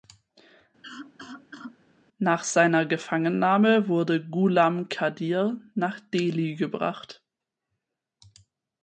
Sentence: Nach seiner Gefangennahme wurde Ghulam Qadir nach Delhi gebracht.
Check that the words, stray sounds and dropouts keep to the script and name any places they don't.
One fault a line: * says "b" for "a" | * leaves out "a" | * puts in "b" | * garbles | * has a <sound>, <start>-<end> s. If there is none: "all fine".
* has a cough, 0.8-1.8 s